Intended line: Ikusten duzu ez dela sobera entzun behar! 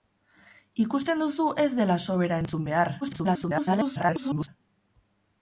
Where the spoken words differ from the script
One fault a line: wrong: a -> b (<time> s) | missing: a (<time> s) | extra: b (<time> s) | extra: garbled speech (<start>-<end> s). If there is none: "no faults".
extra: garbled speech (3.0-4.5 s)